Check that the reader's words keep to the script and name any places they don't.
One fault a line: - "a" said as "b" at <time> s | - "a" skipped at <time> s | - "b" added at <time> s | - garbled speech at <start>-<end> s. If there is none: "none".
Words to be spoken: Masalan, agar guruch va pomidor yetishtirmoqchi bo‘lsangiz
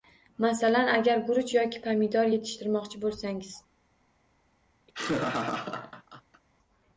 - "va" said as "yoki" at 1.6 s